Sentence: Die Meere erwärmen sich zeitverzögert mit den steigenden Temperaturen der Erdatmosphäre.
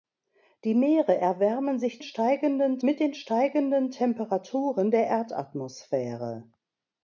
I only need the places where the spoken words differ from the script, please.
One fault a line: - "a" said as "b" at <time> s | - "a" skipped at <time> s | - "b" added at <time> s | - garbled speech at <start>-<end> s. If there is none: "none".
- "zeitverzögert" said as "steigenden" at 2.0 s